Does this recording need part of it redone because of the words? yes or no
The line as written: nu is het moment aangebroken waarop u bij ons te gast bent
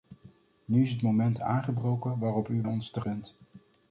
yes